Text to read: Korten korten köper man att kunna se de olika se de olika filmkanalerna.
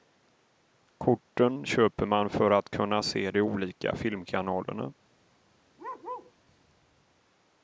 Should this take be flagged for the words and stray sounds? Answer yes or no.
yes